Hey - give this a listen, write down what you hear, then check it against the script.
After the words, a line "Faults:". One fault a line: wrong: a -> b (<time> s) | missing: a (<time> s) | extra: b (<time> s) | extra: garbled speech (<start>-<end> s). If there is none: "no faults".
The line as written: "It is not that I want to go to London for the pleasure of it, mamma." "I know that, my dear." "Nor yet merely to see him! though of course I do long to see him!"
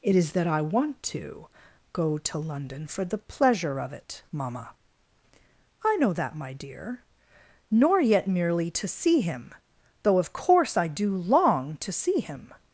"It is that I want to go to London for the pleasure of it, mamma." "I know that, my dear." "Nor yet merely to see him! though of course I do long to see him!"
Faults:
missing: not (0.3 s)